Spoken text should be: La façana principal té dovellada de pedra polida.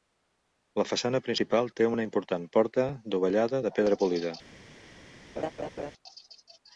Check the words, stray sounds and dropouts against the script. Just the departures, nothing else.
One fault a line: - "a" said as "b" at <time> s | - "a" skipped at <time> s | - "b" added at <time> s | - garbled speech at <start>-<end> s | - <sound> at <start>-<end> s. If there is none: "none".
- "una important porta" added at 1.9 s
- laugh at 5.4-5.9 s